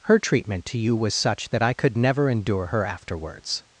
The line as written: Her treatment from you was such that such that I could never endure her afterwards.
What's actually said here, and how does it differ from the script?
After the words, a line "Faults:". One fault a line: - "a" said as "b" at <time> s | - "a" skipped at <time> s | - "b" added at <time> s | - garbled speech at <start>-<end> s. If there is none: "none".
Her treatment to you was such that I could never endure her afterwards.
Faults:
- "from" said as "to" at 0.7 s
- "such that" skipped at 1.6 s